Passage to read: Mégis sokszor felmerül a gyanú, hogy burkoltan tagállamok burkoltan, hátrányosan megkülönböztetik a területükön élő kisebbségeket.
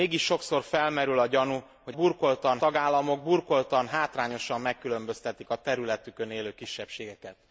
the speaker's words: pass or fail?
pass